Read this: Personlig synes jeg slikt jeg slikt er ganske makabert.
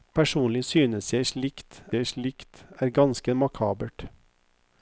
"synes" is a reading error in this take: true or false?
false